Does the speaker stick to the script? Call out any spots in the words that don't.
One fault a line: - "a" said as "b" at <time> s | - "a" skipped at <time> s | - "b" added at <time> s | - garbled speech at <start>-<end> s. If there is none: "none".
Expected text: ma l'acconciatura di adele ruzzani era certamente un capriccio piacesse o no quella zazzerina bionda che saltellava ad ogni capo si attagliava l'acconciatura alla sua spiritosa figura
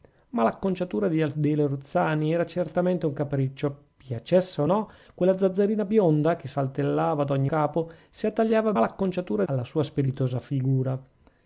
none